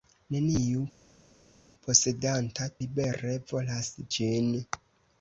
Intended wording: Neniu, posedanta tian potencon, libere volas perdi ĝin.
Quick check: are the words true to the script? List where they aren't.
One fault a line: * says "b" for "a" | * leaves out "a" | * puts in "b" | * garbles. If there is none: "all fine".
* leaves out "tian potencon"
* leaves out "perdi"